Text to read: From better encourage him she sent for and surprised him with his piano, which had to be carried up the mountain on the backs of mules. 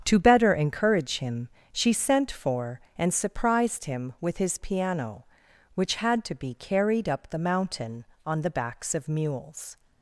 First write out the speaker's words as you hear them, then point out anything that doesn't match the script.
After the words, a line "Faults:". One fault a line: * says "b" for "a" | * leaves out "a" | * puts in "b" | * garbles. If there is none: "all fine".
To better encourage him she sent for and surprised him with his piano, which had to be carried up the mountain on the backs of mules.
Faults:
* says "To" for "From"